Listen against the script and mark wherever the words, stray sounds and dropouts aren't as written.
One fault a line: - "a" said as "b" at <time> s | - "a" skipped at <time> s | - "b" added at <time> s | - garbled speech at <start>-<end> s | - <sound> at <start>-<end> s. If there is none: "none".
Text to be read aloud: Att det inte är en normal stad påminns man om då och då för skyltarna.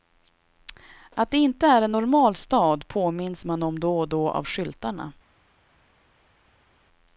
- "för" said as "av" at 4.3 s